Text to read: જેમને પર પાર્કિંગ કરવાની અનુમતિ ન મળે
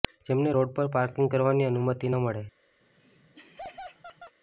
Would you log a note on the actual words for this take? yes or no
yes